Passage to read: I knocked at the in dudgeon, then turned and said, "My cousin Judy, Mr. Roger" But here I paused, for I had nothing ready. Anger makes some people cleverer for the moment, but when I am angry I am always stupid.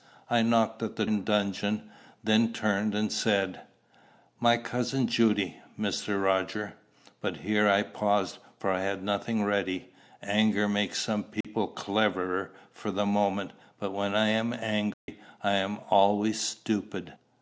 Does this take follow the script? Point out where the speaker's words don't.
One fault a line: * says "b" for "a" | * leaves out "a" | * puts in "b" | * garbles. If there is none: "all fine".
all fine